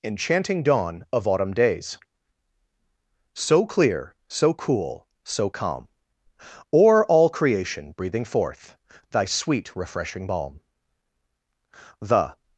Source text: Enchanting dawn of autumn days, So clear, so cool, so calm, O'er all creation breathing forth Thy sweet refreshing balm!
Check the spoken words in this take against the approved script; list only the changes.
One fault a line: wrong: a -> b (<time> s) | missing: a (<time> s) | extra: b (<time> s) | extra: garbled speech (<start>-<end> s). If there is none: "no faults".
extra: The (12.0 s)